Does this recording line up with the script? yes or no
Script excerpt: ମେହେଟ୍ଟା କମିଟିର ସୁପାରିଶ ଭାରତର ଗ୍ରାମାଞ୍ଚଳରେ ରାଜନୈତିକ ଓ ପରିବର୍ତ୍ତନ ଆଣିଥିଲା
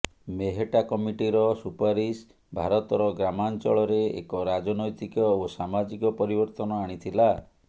no